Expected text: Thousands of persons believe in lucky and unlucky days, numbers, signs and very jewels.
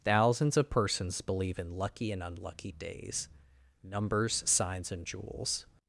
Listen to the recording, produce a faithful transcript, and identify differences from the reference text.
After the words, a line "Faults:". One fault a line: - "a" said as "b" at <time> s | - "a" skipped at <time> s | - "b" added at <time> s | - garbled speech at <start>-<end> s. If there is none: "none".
Thousands of persons believe in lucky and unlucky days, numbers, signs and jewels.
Faults:
- "very" skipped at 5.1 s